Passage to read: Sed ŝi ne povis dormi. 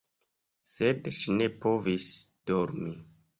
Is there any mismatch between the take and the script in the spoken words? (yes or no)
no